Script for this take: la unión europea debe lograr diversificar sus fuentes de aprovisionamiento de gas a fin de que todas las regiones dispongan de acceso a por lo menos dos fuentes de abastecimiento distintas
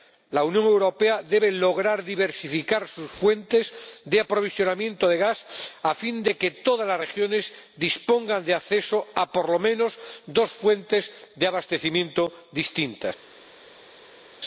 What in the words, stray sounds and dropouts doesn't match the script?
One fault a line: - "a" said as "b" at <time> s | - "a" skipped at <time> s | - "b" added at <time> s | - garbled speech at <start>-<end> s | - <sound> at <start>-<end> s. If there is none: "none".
none